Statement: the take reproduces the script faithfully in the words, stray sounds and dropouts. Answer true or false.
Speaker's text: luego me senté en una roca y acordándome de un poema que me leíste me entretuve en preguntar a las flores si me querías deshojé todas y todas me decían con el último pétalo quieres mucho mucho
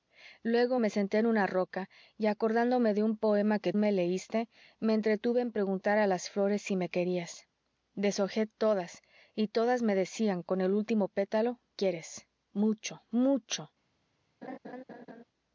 false